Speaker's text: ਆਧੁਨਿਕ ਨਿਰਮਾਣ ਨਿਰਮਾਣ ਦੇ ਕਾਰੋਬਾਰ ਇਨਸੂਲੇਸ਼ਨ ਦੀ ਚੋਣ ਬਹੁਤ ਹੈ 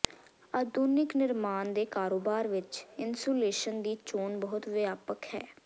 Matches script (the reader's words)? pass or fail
fail